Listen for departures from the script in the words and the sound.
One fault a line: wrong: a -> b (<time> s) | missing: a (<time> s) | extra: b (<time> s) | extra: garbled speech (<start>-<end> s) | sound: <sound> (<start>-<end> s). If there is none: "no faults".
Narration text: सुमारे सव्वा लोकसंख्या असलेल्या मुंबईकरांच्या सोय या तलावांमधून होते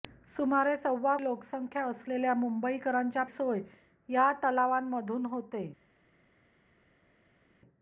no faults